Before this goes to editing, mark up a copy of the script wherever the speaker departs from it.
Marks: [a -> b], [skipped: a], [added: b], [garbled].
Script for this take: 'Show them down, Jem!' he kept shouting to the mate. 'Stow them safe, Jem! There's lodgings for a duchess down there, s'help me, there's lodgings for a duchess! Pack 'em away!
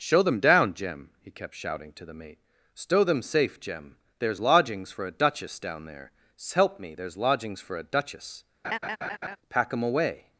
'Show them down, Jem!' he kept shouting to the mate. 'Stow them safe, Jem! There's lodgings for a duchess down there, s'help me, there's lodgings for a duchess! Pack 'em away!